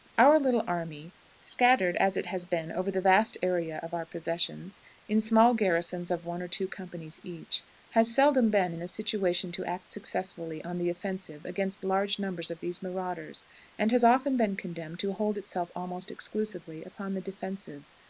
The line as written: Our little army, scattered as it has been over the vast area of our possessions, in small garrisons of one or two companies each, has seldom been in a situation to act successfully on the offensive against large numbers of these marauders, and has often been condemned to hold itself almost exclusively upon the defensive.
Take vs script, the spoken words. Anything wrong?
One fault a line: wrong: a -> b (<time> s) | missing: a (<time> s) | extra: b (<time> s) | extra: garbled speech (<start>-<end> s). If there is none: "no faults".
no faults